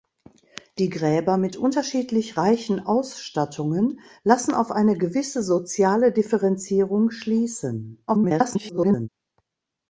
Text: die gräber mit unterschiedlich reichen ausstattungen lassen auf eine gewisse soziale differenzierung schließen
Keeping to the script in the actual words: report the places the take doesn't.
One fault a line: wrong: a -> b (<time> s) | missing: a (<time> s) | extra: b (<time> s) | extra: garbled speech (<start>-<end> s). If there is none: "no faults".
extra: garbled speech (8.1-9.1 s)